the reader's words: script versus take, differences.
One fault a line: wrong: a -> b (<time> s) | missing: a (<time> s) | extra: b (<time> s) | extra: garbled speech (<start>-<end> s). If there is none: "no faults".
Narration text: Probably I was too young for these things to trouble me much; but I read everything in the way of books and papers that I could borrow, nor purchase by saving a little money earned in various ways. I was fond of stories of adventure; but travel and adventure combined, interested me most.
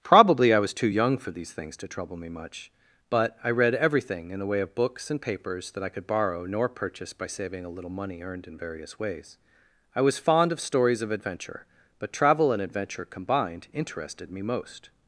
no faults